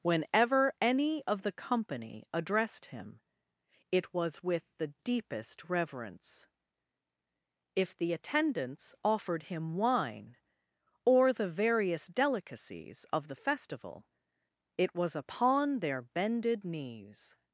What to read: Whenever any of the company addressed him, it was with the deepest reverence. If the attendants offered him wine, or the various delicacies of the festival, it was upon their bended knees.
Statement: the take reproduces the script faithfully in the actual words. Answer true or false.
true